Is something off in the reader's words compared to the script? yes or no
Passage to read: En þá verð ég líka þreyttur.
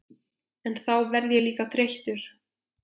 no